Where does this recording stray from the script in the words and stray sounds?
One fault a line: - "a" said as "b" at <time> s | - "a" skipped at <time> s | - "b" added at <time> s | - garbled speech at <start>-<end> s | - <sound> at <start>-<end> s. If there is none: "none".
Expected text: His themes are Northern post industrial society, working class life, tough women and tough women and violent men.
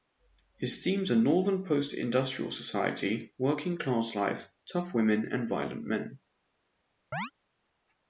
- "tough women and" skipped at 5.5 s
- chirp at 7.1-7.3 s